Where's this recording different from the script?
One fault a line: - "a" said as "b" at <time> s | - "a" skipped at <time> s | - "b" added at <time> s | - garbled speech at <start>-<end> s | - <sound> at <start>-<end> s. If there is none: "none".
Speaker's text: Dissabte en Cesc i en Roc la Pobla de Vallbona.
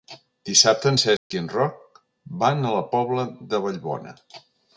- dropout at 1.2-1.3 s
- "van a" added at 2.5 s